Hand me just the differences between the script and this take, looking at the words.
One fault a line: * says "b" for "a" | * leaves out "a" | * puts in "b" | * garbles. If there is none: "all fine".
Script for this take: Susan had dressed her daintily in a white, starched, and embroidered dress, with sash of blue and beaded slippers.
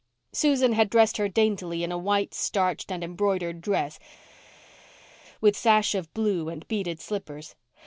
all fine